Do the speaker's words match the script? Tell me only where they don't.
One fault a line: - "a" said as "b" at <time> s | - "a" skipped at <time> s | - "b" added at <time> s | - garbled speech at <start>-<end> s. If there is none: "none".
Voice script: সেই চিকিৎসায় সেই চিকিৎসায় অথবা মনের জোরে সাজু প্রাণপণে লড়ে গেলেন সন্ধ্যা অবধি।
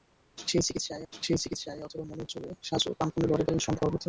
none